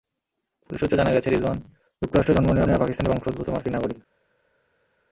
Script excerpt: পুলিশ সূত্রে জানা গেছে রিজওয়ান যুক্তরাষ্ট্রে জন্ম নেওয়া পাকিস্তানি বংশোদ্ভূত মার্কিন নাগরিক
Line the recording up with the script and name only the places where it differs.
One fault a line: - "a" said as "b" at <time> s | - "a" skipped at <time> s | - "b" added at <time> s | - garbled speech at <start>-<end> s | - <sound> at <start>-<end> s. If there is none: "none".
- "নেওয়া" added at 2.7 s